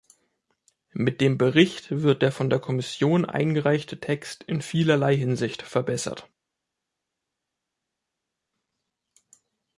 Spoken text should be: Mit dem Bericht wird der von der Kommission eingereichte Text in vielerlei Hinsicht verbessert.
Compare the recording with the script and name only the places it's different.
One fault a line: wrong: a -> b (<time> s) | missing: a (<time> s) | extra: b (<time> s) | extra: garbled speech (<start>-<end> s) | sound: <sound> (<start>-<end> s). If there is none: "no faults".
no faults